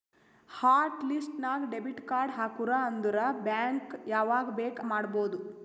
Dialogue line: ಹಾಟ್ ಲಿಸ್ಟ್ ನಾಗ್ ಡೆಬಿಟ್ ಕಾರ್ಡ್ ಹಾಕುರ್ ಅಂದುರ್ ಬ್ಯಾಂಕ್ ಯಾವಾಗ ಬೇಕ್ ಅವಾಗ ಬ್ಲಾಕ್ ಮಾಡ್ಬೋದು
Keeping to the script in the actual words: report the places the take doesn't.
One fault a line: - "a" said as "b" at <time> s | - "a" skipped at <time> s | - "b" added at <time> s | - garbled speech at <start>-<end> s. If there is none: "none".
- "ಅವಾಗ ಬ್ಲಾಕ್" skipped at 4.8 s